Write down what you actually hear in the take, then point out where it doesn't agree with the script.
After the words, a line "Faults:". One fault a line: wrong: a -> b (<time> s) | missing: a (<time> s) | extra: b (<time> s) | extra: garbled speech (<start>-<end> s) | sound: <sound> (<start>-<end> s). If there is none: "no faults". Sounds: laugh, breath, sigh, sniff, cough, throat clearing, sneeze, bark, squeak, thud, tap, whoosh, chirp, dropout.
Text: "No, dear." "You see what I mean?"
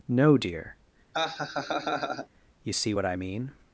"No, dear." "You see what I mean?"
Faults:
sound: laugh (1.1-2.3 s)